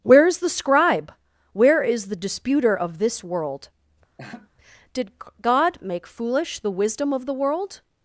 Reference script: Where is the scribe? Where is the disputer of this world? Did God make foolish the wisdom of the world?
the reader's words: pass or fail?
pass